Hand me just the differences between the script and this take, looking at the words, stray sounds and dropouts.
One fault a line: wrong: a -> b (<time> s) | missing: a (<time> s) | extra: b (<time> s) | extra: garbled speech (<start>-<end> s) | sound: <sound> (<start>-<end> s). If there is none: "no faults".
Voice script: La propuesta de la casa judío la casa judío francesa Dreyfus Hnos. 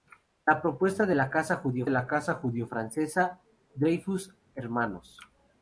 no faults